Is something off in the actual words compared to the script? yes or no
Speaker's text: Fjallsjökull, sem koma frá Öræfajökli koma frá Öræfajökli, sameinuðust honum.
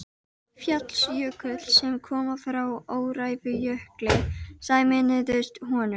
yes